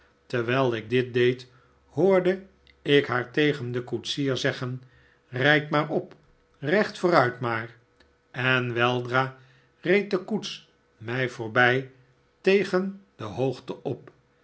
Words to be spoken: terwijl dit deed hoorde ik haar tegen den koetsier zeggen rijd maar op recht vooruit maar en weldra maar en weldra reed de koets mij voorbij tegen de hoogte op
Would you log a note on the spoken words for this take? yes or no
yes